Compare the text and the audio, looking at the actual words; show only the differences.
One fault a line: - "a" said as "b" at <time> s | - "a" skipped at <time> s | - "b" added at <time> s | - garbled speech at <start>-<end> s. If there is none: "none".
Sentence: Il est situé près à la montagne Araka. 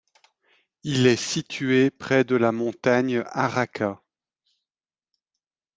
- "à" said as "de" at 2.2 s